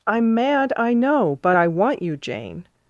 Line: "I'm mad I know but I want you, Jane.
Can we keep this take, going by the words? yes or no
yes